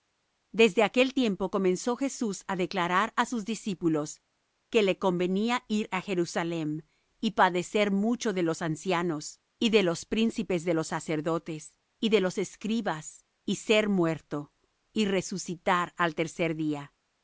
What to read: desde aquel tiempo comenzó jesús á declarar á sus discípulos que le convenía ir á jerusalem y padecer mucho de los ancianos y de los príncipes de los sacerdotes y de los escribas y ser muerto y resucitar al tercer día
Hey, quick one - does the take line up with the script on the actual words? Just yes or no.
yes